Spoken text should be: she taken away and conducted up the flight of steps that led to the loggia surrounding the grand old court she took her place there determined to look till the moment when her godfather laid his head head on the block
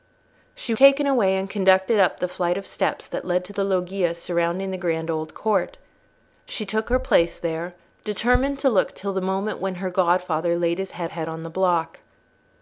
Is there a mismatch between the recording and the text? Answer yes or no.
no